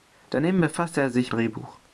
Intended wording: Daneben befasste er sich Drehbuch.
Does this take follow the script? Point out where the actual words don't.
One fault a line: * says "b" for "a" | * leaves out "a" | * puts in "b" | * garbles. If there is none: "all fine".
all fine